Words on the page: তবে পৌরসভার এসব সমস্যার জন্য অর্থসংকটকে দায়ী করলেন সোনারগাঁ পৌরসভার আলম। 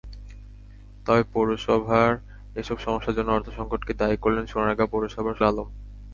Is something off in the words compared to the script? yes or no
no